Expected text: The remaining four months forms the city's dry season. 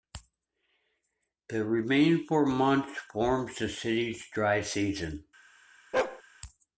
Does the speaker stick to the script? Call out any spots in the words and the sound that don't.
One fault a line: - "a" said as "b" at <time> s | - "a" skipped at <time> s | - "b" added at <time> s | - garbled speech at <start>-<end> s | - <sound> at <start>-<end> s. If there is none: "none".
- bark at 5.9-6.2 s